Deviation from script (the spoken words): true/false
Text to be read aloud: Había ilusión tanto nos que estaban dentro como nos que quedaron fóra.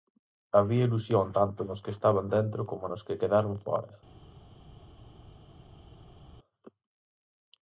false